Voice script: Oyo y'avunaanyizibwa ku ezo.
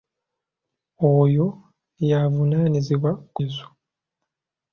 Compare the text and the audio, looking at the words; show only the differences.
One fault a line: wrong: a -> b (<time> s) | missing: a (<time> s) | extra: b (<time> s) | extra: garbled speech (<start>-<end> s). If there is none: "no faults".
no faults